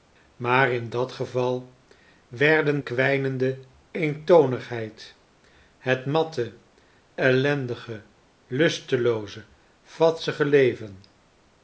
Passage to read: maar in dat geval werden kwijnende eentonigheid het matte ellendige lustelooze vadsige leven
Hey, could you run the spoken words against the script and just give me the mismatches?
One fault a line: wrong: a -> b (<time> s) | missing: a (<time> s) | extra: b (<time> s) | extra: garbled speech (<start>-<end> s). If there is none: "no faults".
no faults